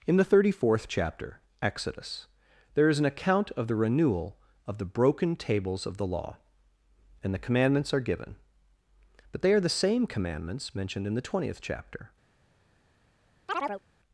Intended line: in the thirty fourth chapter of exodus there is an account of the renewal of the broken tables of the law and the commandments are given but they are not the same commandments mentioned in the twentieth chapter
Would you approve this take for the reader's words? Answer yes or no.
no